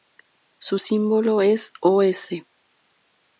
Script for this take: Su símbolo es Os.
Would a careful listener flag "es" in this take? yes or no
no